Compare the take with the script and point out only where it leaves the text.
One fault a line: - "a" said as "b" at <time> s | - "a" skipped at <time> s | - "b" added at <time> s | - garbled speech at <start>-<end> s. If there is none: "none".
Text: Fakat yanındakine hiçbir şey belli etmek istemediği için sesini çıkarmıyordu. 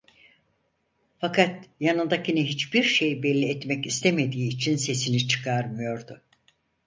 none